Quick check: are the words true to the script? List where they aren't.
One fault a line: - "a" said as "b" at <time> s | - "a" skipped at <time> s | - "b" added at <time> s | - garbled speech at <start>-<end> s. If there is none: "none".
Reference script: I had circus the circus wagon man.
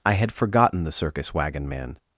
- "circus" said as "forgotten" at 0.3 s